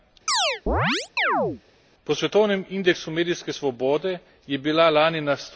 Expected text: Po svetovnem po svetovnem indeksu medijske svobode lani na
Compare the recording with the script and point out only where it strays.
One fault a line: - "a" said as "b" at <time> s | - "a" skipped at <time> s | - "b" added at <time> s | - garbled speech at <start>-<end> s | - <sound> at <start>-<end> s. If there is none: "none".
- chirp at 0.3-1.6 s
- "po svetovnem" skipped at 2.6 s
- "je bila" added at 4.5 s